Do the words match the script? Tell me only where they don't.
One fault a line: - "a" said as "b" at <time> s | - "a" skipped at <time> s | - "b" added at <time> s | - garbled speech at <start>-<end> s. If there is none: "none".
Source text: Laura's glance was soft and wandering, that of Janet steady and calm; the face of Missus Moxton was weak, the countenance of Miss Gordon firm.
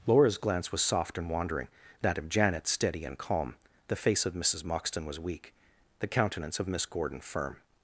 none